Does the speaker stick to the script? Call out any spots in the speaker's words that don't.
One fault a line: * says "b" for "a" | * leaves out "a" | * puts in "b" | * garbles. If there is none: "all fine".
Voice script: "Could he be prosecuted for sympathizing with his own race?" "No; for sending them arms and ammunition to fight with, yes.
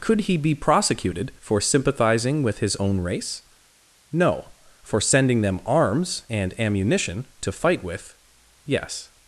all fine